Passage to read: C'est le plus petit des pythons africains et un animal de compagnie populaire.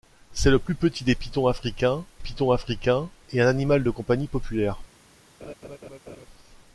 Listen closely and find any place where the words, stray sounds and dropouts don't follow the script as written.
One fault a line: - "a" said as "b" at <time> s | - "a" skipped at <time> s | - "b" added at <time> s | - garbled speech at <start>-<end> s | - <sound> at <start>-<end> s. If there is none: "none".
- "pythons africains" added at 2.2 s
- laugh at 5.4-6.3 s